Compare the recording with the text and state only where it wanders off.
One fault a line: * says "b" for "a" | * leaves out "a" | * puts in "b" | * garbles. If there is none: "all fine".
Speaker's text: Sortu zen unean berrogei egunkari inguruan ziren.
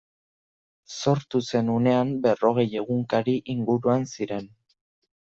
all fine